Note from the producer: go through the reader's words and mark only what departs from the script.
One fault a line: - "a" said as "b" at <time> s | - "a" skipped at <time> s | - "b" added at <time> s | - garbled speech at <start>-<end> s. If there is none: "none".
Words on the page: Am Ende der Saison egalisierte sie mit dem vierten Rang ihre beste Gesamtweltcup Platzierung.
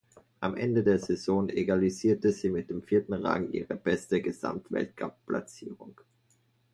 none